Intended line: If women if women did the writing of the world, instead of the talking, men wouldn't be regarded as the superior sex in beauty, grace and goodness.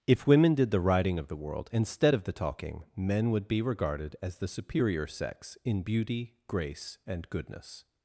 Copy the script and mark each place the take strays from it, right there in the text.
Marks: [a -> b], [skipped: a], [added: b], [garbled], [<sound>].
If women [skipped: if women] did the writing of the world, instead of the talking, men [wouldn't -> would] be regarded as the superior sex in beauty, grace and goodness.